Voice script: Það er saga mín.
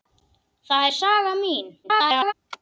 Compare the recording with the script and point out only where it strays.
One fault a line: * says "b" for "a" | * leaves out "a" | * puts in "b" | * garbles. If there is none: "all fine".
* garbles